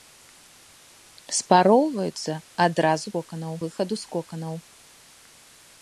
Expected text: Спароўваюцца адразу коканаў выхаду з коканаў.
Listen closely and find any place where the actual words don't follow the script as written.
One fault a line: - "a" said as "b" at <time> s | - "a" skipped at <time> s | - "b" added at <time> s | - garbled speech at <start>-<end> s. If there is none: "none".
none